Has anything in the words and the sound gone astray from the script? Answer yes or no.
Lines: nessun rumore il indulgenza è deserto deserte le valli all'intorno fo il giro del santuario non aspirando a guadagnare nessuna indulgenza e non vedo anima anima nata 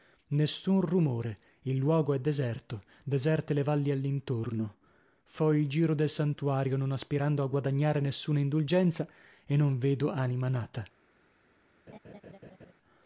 yes